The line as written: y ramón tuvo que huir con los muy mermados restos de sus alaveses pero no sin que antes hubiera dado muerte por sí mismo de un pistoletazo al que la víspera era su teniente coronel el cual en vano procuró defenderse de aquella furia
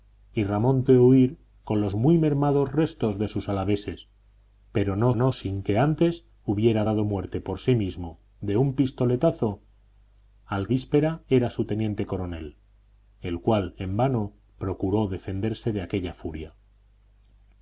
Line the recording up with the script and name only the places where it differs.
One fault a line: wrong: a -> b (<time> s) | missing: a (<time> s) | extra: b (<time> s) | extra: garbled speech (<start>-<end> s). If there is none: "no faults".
missing: tuvo (0.8 s)
extra: no (5.1 s)
missing: que la (10.7 s)